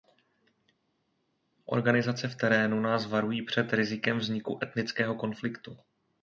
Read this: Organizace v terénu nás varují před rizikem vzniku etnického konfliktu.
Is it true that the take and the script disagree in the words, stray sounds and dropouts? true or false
false